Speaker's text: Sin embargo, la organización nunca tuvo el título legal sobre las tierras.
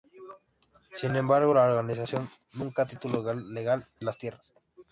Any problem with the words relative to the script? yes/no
yes